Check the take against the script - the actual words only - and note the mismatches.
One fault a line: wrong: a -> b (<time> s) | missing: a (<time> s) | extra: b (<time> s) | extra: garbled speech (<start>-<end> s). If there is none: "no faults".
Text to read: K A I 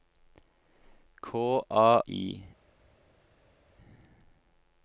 no faults